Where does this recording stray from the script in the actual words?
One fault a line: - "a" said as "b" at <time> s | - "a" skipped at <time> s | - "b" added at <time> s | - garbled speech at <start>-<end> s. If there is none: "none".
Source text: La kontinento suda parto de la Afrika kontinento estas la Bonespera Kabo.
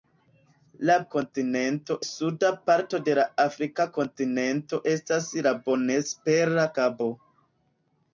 none